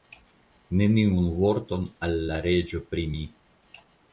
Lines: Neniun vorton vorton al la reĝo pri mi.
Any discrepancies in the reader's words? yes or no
yes